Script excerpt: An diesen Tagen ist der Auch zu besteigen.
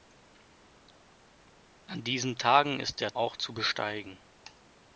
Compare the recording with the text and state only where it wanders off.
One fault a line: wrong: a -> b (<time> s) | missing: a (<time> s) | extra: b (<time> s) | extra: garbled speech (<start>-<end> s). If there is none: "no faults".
no faults